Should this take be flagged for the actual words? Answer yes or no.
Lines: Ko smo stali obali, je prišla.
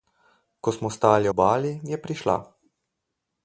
no